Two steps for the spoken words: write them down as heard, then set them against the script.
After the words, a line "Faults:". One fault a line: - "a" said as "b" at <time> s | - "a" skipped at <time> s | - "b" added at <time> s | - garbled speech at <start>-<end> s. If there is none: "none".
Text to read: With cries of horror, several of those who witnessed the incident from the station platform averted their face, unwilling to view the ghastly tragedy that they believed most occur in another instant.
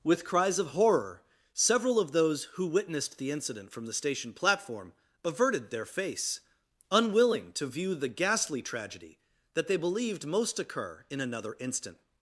With cries of horror, several of those who witnessed the incident from the station platform averted their face, unwilling to view the ghastly tragedy that they believed most occur in another instant.
Faults:
none